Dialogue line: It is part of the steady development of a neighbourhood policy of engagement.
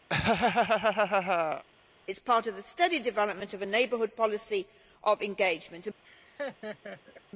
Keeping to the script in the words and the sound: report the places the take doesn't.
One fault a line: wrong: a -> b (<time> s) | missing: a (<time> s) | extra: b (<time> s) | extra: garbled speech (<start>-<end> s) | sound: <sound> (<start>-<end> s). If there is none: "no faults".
sound: laugh (0.1-1.6 s)
sound: laugh (6.0-7.2 s)